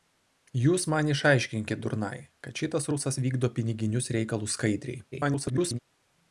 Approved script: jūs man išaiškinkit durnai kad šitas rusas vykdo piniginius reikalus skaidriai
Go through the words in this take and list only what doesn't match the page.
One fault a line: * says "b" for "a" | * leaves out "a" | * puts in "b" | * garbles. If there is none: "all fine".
* garbles